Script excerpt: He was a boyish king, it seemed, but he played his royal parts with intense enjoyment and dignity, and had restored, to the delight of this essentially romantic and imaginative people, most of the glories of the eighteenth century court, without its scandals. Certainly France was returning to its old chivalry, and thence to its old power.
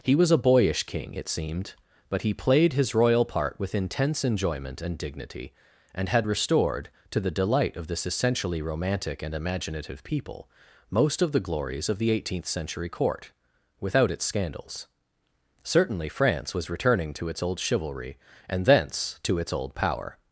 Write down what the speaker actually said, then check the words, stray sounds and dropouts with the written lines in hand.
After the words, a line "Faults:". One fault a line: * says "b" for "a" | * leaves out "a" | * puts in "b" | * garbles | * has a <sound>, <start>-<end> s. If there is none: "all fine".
He was a boyish king, it seemed, but he played his royal part with intense enjoyment and dignity, and had restored, to the delight of this essentially romantic and imaginative people, most of the glories of the eighteenth century court, without its scandals. Certainly France was returning to its old chivalry, and thence to its old power.
Faults:
* says "part" for "parts"